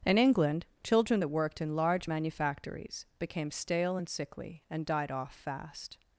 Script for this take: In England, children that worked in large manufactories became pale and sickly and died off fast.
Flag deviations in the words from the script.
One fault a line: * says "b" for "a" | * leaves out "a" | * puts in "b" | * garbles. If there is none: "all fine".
* says "stale" for "pale"